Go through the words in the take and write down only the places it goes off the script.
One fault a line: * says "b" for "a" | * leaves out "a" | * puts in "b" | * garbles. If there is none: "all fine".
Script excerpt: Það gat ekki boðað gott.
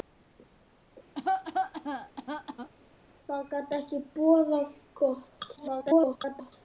* garbles